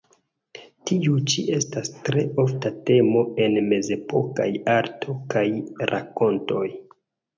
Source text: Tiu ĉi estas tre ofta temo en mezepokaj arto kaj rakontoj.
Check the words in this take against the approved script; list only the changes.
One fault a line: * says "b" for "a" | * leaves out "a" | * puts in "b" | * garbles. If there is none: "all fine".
all fine